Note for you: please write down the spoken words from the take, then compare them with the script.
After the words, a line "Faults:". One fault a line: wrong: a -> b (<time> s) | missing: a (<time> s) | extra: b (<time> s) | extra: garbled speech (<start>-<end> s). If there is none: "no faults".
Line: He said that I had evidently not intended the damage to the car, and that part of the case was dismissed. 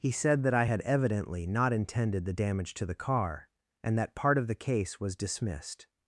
He said that I had evidently not intended the damage to the car, and that part of the case was dismissed.
Faults:
no faults